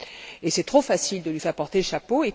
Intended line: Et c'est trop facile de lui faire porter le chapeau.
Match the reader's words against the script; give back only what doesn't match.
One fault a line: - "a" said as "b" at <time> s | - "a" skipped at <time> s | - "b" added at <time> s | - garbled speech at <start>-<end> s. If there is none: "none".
none